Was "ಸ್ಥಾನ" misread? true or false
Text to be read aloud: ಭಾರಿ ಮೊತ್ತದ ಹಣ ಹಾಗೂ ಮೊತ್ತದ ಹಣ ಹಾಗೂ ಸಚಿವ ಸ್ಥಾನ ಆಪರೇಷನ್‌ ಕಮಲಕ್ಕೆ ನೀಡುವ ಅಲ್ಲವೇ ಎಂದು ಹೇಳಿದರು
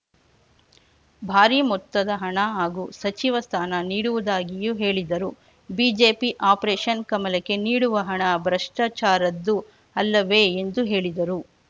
true